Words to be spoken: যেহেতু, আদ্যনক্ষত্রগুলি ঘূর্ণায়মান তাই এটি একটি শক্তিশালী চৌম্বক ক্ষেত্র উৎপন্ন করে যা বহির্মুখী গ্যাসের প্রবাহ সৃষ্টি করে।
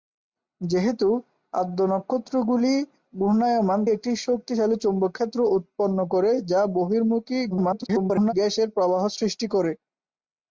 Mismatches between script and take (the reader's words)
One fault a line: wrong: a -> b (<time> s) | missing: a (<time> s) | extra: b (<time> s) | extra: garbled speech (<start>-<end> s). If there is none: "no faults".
missing: তাই এটি (3.8 s)
extra: garbled speech (7.5-8.3 s)